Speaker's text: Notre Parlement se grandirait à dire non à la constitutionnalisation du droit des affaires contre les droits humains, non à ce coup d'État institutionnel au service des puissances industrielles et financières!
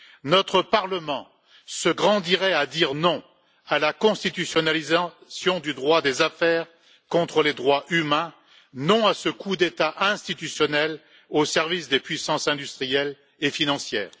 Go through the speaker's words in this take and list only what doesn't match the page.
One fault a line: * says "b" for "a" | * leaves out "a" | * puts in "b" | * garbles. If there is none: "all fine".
all fine